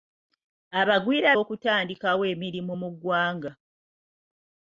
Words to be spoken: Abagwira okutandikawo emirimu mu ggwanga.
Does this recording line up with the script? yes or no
yes